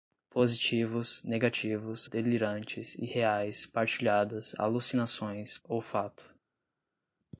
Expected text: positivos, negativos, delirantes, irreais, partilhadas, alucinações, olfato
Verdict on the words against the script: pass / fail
pass